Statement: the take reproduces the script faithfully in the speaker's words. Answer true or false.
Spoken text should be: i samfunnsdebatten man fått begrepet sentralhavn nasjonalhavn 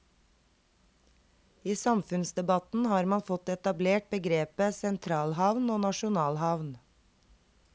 false